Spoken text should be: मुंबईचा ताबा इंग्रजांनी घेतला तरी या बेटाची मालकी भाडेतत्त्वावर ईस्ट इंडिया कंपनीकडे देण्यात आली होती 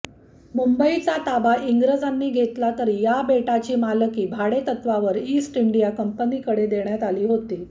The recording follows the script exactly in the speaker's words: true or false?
true